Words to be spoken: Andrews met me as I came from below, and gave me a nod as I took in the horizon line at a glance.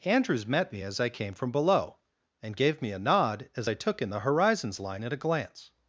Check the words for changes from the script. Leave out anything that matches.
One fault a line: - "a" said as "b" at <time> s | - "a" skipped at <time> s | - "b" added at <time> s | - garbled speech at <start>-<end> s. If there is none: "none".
- "horizon" said as "horizons" at 4.2 s